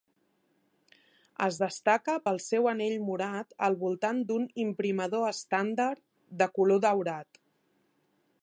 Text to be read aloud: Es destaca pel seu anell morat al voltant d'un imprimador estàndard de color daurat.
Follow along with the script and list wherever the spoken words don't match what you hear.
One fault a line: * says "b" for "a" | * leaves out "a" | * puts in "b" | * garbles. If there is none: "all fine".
all fine